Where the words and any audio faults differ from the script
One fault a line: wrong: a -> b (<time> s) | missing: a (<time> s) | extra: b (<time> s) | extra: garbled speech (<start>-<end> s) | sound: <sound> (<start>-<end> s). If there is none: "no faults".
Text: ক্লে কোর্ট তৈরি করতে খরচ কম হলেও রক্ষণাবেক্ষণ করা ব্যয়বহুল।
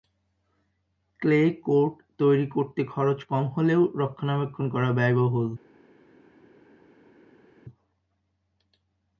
no faults